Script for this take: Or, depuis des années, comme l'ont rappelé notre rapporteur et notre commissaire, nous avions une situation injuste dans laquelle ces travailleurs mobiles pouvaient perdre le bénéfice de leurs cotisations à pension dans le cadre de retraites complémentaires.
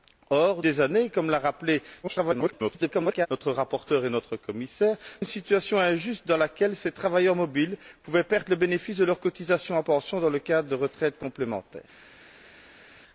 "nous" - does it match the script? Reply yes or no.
no